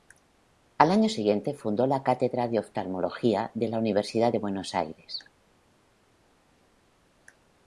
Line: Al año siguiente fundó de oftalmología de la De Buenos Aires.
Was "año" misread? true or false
false